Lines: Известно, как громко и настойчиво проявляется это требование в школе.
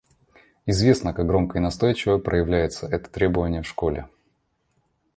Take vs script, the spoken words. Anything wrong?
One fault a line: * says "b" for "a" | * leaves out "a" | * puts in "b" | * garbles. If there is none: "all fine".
all fine